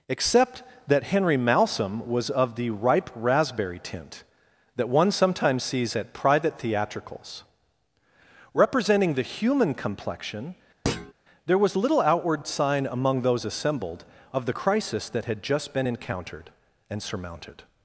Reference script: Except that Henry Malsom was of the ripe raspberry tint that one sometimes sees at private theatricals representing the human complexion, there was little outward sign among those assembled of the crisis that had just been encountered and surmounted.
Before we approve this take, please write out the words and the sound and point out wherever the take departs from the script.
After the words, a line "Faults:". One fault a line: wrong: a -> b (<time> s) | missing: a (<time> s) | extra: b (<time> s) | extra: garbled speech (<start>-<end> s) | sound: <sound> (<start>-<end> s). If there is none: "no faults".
Except that Henry Malsom was of the ripe raspberry tint that one sometimes sees at private theatricals representing the human complexion, there was little outward sign among those assembled of the crisis that had just been encountered and surmounted.
Faults:
sound: thud (10.8-11.1 s)